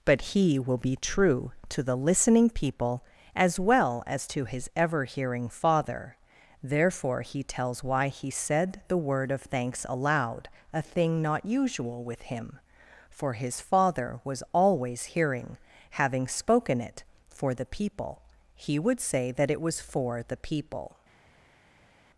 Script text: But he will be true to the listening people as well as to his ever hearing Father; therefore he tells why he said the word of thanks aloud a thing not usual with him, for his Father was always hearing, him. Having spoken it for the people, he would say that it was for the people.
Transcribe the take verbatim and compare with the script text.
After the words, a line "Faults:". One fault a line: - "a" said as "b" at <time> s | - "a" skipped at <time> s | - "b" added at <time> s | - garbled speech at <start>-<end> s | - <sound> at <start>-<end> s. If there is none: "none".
But he will be true to the listening people as well as to his ever hearing Father; therefore he tells why he said the word of thanks aloud a thing not usual with him, for his Father was always hearing. Having spoken it for the people, he would say that it was for the people.
Faults:
- "him" skipped at 15.6 s